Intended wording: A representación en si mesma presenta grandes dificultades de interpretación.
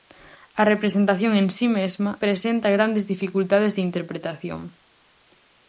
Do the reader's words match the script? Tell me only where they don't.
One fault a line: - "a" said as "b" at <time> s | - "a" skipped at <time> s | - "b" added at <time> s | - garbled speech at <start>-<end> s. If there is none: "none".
none